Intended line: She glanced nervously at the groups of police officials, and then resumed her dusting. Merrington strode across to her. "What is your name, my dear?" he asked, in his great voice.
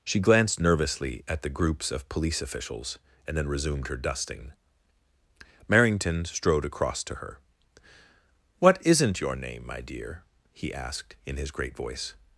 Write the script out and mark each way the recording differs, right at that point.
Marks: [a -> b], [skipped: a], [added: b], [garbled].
She glanced nervously at the groups of police officials, and then resumed her dusting. Merrington strode across to her. "What [is -> isn't] your name, my dear?" he asked, in his great voice.